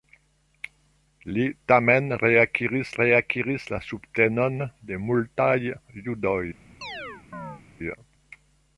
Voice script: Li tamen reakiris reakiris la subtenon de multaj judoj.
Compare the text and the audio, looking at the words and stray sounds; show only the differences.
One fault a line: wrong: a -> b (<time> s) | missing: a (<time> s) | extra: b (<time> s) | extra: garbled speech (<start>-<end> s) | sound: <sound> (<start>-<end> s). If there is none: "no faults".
sound: chirp (6.8-7.6 s)